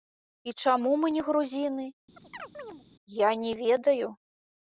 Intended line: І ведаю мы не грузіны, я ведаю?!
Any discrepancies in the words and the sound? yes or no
yes